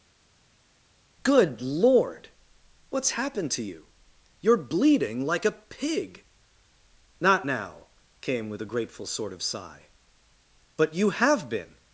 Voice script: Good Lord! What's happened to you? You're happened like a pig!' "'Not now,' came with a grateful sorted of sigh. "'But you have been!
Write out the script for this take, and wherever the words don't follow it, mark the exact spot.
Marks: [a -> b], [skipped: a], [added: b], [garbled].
Good Lord! What's happened to you? You're [happened -> bleeding] like a pig!' "'Not now,' came with a grateful [sorted -> sort] of sigh. "'But you have been!